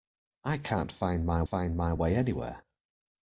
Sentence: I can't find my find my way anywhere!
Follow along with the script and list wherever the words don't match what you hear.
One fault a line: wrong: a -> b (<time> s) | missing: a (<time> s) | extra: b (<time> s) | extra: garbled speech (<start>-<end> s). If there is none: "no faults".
no faults